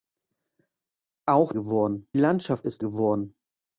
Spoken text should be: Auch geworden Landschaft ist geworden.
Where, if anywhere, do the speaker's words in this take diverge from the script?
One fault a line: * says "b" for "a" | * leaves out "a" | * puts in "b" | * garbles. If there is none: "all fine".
all fine